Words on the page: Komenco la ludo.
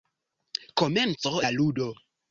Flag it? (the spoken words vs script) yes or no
no